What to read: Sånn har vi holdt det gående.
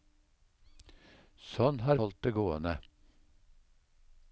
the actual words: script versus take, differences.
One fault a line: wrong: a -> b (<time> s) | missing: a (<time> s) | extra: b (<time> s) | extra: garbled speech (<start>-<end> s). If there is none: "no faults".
missing: vi (2.0 s)